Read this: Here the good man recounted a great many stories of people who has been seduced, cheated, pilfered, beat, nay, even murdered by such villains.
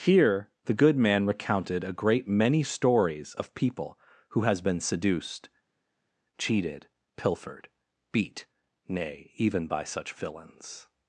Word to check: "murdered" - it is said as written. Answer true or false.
false